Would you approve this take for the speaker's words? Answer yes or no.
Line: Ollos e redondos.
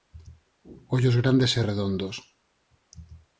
no